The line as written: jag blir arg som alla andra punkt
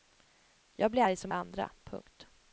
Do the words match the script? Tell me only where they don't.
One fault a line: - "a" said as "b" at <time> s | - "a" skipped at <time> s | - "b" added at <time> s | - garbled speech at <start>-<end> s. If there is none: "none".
- "alla" skipped at 1.3 s